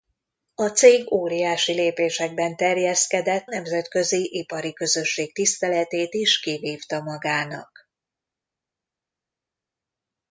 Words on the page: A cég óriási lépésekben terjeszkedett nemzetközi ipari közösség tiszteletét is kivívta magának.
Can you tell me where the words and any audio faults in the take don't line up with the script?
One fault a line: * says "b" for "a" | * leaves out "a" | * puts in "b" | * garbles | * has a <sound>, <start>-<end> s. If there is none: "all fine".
all fine